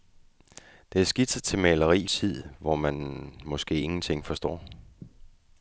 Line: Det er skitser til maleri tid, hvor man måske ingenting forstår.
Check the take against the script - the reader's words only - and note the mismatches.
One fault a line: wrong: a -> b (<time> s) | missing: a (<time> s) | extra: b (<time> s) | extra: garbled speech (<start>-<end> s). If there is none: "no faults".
no faults